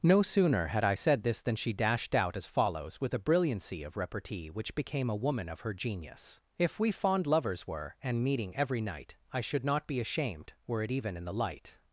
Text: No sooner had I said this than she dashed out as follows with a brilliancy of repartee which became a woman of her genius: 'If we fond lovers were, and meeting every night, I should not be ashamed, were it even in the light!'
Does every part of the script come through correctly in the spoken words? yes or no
yes